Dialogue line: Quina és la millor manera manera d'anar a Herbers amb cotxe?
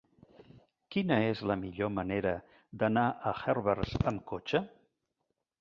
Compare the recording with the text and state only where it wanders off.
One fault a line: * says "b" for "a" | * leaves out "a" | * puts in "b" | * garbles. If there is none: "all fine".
* leaves out "manera"